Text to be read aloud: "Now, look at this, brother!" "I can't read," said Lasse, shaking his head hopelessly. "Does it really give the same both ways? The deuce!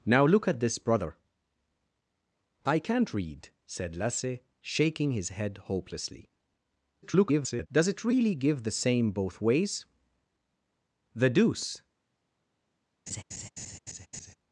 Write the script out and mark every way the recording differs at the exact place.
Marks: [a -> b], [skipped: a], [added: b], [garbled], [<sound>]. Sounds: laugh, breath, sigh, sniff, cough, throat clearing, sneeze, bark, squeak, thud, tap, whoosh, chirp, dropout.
"Now, look at this, brother!" "I can't read," said Lasse, shaking his head hopelessly. [garbled] "Does it really give the same both ways? The deuce! [laugh]